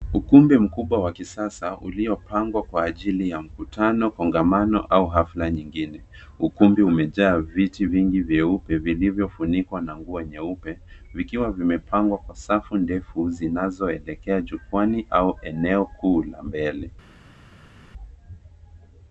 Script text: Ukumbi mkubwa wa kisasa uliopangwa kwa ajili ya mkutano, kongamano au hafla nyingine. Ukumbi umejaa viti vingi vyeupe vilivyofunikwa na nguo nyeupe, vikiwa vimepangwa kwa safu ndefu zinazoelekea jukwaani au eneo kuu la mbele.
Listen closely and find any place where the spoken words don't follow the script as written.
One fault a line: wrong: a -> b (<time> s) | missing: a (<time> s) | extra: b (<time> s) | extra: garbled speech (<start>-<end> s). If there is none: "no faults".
no faults